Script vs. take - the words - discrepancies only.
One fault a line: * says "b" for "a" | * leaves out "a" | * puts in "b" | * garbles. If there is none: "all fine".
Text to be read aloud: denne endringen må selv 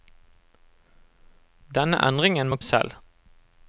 all fine